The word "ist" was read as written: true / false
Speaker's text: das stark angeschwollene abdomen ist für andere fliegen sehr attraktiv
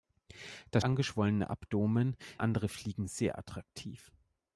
false